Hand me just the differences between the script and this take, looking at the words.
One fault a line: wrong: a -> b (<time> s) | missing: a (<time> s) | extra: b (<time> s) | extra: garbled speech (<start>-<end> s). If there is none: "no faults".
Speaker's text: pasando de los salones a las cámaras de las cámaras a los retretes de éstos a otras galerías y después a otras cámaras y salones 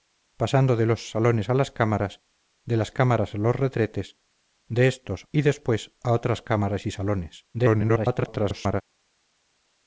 missing: a otras galerías (5.3 s)
extra: garbled speech (7.5-8.8 s)